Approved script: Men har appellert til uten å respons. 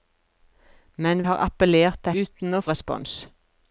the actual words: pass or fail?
pass